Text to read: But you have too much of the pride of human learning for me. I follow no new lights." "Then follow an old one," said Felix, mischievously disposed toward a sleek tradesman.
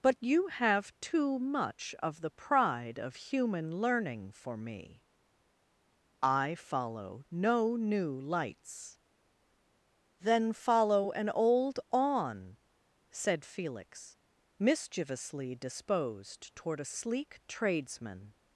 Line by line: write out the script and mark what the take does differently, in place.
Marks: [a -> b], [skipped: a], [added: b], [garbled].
But you have too much of the pride of human learning for me. I follow no new lights." "Then follow an old [one," -> on] said Felix, mischievously disposed toward a sleek tradesman.